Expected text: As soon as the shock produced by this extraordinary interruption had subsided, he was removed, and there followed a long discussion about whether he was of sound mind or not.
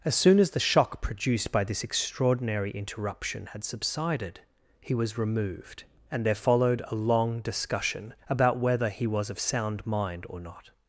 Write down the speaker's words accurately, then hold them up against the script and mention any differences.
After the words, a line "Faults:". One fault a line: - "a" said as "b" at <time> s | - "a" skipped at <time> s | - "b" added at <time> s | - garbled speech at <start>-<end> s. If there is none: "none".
As soon as the shock produced by this extraordinary interruption had subsided, he was removed, and there followed a long discussion about whether he was of sound mind or not.
Faults:
none